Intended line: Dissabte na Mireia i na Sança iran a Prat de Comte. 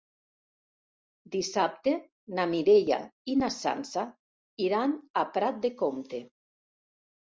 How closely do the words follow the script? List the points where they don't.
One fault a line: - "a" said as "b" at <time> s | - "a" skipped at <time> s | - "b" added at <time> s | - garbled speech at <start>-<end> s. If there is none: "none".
none